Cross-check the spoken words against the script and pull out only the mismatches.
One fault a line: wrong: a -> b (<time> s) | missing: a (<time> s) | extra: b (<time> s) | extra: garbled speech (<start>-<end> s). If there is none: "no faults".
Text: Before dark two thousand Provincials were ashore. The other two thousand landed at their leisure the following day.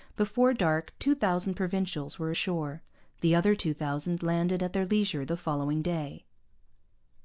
no faults